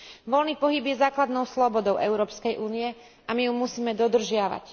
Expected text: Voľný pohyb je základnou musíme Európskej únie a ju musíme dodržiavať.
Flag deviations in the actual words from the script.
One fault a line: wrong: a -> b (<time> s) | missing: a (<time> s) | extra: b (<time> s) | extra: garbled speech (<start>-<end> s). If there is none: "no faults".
wrong: musíme -> slobodou (1.4 s)
extra: my (3.3 s)